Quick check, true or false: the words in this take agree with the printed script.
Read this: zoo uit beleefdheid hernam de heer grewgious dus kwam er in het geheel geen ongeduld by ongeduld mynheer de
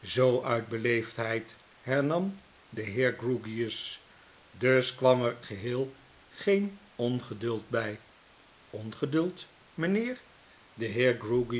false